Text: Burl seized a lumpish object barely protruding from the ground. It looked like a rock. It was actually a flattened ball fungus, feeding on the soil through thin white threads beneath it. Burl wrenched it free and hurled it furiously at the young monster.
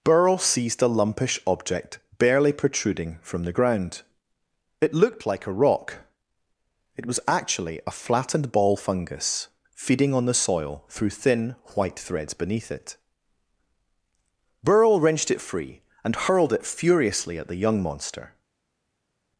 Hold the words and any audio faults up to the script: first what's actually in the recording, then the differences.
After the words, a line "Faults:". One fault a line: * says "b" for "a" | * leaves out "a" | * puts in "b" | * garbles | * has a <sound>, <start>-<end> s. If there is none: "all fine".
Burl seized a lumpish object barely protruding from the ground. It looked like a rock. It was actually a flattened ball fungus, feeding on the soil through thin white threads beneath it. Burl wrenched it free and hurled it furiously at the young monster.
Faults:
all fine